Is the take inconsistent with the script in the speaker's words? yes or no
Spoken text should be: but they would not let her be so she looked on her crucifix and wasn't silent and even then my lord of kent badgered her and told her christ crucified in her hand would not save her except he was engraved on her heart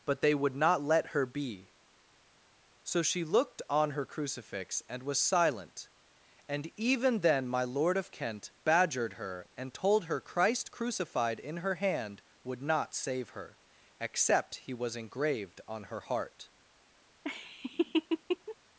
yes